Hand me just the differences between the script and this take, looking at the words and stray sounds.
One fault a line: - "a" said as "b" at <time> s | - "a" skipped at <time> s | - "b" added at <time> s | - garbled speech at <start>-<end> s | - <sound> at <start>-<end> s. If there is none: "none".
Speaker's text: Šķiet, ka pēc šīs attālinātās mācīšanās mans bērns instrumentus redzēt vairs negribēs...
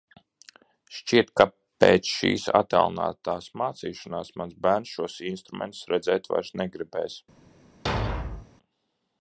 - "šos" added at 5.0 s
- thud at 7.9-8.5 s